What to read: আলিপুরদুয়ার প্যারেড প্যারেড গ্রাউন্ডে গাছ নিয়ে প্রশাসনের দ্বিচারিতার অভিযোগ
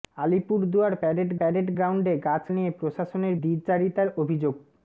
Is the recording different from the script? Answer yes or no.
no